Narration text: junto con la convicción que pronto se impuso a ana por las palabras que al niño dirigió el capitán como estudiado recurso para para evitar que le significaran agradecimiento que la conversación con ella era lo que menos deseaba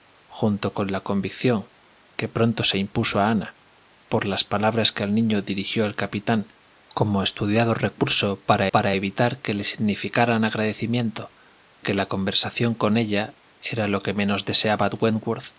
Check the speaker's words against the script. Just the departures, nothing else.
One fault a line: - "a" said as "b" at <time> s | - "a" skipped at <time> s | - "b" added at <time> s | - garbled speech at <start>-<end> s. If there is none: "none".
none